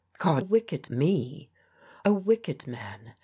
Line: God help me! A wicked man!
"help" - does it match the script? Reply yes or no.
no